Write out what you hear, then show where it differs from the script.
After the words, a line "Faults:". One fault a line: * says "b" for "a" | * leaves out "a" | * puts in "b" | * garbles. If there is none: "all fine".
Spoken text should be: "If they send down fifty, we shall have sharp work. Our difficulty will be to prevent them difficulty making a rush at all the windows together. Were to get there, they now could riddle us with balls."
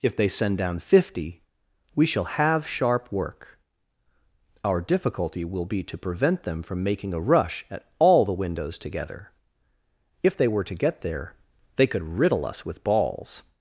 "If they send down fifty, we shall have sharp work. Our difficulty will be to prevent them from making a rush at all the windows together. If they were to get there, they could riddle us with balls."
Faults:
* says "from" for "difficulty"
* puts in "If they"
* leaves out "now"